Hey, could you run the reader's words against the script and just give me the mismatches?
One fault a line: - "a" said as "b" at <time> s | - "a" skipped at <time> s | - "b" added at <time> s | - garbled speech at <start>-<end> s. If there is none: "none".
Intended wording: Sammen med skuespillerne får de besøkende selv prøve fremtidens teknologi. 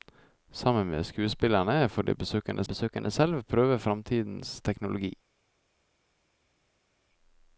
- "besøkende" added at 2.6 s